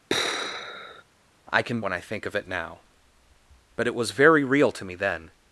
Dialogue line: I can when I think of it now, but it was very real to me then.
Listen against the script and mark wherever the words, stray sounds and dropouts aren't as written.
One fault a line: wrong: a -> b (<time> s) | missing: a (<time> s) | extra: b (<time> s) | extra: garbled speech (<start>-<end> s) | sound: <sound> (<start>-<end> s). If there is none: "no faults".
sound: sigh (0.1-1.0 s)